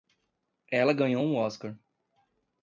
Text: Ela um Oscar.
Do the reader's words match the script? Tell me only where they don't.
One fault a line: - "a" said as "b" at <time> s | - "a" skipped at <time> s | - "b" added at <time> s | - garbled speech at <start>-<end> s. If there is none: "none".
- "ganhou" added at 0.9 s